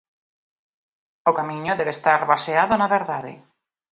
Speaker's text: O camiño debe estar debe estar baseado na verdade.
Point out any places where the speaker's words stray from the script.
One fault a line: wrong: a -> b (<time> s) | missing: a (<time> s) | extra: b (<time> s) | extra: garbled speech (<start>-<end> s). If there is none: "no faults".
missing: debe estar (2.2 s)